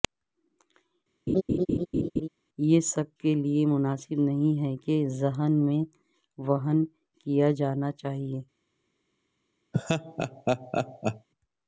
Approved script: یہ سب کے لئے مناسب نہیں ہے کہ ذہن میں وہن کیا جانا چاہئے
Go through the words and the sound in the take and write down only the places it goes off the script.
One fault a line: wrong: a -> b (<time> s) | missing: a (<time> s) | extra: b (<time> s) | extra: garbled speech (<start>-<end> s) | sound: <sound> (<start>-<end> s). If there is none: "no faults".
sound: laugh (1.3-2.3 s)
sound: laugh (9.7-11.3 s)